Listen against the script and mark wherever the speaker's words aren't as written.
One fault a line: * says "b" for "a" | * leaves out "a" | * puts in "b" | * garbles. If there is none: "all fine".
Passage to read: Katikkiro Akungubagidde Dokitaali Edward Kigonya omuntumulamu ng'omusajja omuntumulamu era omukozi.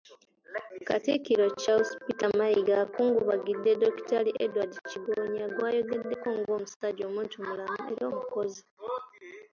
* puts in "Charles Peter Mayiga"
* says "gw'ayogeddeko" for "omuntumulamu"